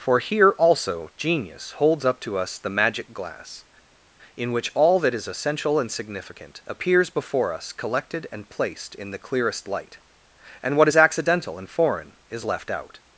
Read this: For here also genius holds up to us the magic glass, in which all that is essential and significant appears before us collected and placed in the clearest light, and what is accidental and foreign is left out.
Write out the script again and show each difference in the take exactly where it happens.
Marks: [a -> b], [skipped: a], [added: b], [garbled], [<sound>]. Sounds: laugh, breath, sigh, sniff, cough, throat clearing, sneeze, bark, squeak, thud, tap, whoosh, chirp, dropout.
For here also genius holds up to us the magic glass, in which all that is essential and significant appears before us collected and placed in the clearest light, and what is accidental and foreign is left out.